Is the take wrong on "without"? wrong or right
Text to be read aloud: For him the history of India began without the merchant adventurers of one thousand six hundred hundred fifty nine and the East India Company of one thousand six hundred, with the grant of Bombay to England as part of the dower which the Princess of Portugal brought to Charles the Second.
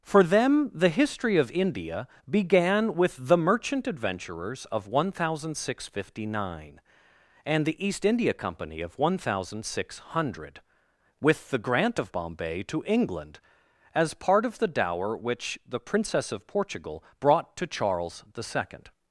wrong